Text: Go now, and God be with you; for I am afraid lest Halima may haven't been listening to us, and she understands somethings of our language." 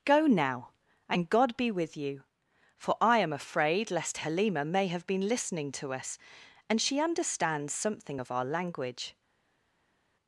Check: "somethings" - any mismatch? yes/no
yes